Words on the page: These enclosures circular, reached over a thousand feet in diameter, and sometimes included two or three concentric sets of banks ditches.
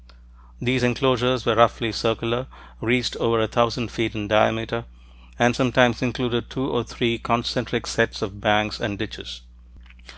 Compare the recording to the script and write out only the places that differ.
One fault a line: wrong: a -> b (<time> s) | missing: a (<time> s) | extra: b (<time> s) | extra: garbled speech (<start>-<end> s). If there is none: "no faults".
extra: were roughly (1.4 s)
extra: and (8.8 s)